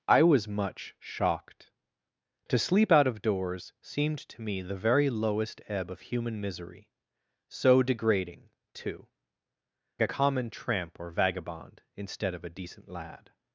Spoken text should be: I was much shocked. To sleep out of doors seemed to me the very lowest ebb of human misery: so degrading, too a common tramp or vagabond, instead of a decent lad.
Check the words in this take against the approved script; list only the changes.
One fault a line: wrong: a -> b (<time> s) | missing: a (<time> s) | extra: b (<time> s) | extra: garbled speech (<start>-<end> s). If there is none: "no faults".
no faults